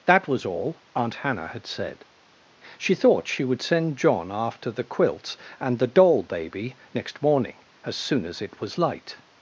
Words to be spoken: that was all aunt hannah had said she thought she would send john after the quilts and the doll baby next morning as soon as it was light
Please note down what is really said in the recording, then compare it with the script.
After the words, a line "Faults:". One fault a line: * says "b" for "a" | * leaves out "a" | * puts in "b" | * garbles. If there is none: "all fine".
that was all aunt hannah had said she thought she would send john after the quilts and the doll baby next morning as soon as it was light
Faults:
all fine